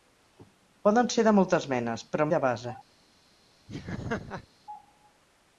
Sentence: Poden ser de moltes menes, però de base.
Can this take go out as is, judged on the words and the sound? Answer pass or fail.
fail